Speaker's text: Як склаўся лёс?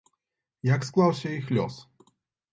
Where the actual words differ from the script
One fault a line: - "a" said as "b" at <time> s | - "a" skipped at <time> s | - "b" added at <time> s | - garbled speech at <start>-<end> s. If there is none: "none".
- "іх" added at 1.4 s